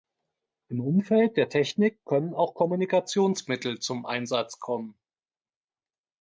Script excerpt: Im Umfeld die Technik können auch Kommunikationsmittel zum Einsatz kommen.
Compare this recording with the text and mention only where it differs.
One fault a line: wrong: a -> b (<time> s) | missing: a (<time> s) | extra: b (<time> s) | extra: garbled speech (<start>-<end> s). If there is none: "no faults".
wrong: die -> der (1.4 s)